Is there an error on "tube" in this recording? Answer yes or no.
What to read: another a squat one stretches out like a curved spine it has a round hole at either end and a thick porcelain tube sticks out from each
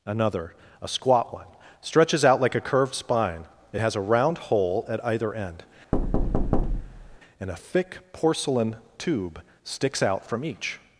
no